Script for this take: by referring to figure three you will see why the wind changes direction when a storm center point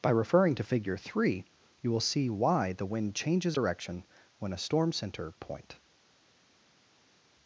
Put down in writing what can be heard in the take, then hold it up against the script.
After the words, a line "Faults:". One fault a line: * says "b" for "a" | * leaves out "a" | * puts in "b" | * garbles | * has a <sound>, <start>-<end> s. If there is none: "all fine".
by referring to figure three you will see why the wind changes direction when a storm center point
Faults:
all fine